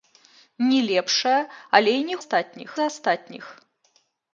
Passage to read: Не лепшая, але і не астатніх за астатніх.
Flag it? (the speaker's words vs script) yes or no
no